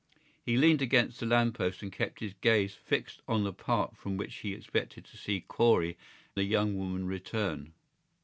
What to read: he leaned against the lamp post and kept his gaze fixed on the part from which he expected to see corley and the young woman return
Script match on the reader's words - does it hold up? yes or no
no